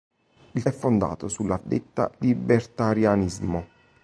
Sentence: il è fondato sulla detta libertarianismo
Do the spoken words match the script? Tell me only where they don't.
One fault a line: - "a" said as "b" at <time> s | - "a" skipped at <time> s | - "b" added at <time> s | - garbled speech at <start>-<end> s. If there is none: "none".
none